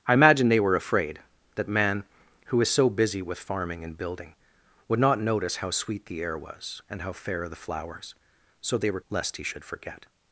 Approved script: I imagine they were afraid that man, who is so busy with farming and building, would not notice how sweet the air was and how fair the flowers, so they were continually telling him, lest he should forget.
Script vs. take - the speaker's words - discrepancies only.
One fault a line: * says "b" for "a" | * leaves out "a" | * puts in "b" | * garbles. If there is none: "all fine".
* leaves out "continually telling him"